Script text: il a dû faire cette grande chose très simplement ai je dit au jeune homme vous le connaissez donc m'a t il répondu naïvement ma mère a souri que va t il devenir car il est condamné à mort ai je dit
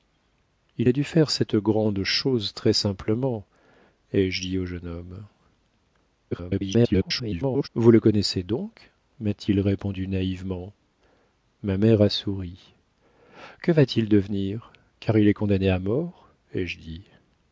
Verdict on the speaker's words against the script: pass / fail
fail